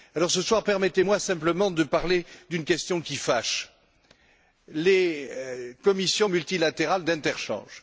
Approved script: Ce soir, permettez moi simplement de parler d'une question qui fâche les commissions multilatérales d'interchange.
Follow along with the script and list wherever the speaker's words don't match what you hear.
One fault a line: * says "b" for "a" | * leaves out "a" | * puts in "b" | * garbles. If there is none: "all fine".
all fine